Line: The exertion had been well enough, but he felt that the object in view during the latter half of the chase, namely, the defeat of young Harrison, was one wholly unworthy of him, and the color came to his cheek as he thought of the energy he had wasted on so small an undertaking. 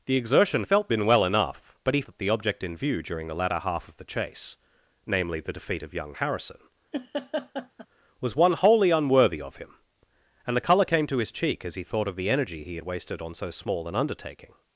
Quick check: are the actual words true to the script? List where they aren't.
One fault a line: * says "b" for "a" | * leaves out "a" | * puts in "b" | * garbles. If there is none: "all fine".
* says "felt" for "had"
* leaves out "felt"